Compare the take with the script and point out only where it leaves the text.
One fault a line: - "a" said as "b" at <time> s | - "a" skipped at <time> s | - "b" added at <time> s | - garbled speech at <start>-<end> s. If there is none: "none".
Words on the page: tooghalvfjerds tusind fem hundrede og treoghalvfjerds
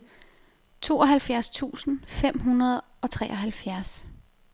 none